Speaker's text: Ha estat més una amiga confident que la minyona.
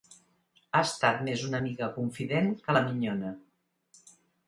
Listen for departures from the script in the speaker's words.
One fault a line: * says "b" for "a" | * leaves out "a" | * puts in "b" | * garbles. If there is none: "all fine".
all fine